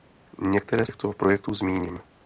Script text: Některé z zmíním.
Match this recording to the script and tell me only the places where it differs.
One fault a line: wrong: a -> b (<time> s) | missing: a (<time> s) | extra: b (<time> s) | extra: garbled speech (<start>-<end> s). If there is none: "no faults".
extra: těchto projektů (0.8 s)